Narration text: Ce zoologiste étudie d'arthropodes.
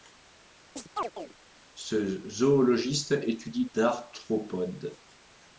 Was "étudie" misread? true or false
false